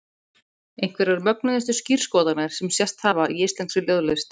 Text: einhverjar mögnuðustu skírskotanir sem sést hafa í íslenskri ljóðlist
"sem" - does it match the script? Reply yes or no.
yes